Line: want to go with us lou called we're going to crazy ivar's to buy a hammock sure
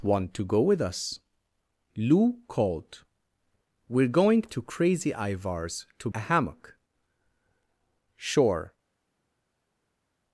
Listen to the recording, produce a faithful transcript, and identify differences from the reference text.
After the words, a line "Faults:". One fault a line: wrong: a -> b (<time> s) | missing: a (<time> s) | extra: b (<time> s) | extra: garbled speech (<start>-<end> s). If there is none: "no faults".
want to go with us lou called we're going to crazy ivar's to a hammock sure
Faults:
missing: buy (6.1 s)